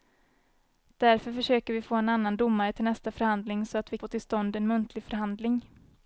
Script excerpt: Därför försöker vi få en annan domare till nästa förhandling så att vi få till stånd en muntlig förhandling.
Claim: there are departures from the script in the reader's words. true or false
false